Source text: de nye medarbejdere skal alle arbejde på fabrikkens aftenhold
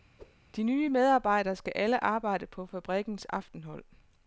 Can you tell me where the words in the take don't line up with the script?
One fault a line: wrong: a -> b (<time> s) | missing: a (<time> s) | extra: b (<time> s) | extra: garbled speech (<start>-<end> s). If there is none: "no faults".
no faults